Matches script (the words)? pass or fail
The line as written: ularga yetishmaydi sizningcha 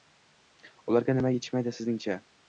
fail